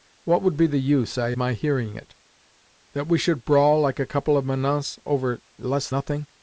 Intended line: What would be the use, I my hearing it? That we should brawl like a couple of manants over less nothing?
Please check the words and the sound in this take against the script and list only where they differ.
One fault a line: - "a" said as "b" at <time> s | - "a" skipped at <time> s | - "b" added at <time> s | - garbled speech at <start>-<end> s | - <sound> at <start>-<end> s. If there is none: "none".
none